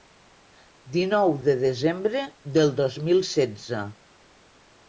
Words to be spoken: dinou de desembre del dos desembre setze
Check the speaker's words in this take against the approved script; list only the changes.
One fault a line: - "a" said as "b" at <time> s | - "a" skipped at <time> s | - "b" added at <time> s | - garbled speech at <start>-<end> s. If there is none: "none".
- "desembre" said as "mil" at 3.1 s